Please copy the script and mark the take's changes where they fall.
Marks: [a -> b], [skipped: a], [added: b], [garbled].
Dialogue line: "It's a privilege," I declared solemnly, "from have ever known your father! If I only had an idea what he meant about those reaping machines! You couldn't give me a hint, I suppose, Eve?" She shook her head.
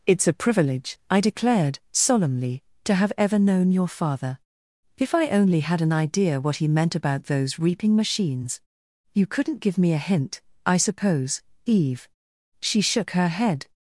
"It's a privilege," I declared solemnly, ["from -> to] have ever known your father! If I only had an idea what he meant about those reaping machines! You couldn't give me a hint, I suppose, Eve?" She shook her head.